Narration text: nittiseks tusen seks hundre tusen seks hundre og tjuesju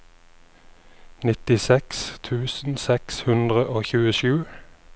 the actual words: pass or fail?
fail